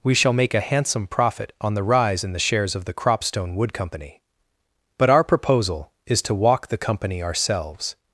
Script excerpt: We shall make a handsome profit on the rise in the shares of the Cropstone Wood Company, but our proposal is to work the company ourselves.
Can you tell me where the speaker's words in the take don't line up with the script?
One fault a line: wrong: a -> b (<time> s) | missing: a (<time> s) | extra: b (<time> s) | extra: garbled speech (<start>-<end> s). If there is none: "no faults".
wrong: work -> walk (6.3 s)